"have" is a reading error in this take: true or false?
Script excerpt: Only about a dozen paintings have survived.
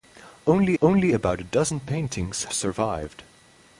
true